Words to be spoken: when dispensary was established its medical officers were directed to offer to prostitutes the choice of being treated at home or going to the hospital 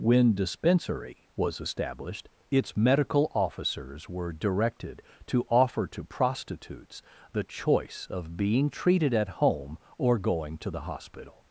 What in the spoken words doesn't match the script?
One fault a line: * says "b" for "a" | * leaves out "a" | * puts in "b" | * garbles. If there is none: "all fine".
all fine